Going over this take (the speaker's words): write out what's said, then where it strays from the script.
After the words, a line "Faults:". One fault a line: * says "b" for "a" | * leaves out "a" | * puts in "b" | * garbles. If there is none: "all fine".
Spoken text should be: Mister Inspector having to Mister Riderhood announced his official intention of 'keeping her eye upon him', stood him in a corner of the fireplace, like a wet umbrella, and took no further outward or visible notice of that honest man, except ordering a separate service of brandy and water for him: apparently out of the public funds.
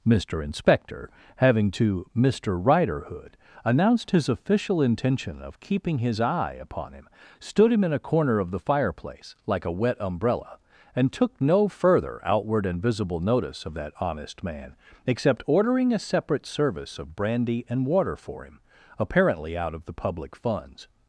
Mister Inspector having to Mister Riderhood announced his official intention of 'keeping his eye upon him', stood him in a corner of the fireplace, like a wet umbrella, and took no further outward and visible notice of that honest man, except ordering a separate service of brandy and water for him: apparently out of the public funds.
Faults:
* says "his" for "her"
* says "and" for "or"